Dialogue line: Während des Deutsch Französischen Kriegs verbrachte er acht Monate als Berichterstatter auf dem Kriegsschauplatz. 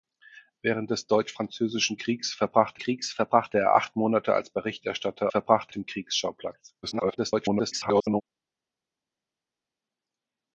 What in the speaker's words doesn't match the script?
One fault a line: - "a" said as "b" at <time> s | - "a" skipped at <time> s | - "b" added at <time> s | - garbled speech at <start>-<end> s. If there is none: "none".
- "Kriegs verbrachte" added at 2.8 s
- "auf" said as "verbrachte" at 5.3 s
- garbled speech at 6.8-8.2 s